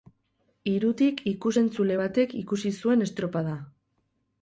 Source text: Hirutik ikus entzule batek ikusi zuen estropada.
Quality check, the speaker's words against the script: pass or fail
pass